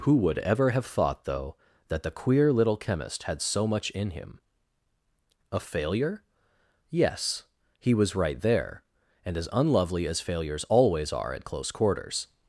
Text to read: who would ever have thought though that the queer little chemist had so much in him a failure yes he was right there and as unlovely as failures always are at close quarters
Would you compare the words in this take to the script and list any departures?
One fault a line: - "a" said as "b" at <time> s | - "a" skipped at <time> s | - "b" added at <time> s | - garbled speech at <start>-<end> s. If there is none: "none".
none